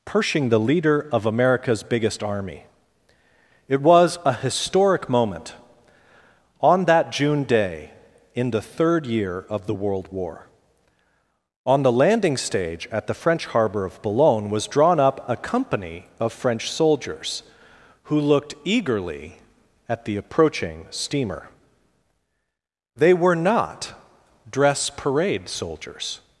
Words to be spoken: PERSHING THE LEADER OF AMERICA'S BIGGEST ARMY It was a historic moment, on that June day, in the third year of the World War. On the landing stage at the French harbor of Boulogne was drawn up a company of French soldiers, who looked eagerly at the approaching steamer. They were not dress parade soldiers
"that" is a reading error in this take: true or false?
false